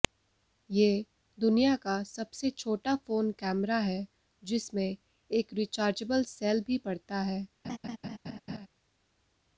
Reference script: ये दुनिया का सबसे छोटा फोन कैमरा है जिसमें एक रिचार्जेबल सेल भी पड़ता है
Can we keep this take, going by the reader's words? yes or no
yes